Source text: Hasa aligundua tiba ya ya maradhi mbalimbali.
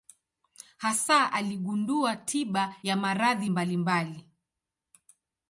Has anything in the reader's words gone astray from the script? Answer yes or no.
yes